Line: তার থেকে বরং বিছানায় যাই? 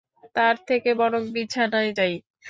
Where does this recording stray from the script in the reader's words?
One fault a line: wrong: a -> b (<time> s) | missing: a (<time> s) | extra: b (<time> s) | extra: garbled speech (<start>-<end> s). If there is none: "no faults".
no faults